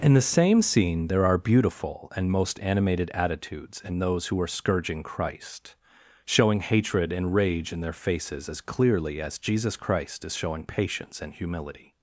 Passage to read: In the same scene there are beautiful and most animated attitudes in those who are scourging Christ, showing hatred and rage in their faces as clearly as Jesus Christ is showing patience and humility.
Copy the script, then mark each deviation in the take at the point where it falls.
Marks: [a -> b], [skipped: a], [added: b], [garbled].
In the same scene there are beautiful and most animated attitudes in those who are scourging Christ, showing hatred and rage in their faces as clearly as Jesus Christ is showing patience and humility.